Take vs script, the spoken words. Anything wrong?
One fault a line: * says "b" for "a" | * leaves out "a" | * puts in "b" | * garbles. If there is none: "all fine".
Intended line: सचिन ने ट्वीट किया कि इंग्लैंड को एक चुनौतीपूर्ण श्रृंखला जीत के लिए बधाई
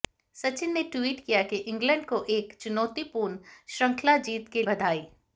* leaves out "लिए"